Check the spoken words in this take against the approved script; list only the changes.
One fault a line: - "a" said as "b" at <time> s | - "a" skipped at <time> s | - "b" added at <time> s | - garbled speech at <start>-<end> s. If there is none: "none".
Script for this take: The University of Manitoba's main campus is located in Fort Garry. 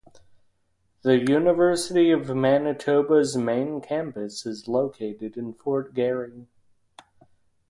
none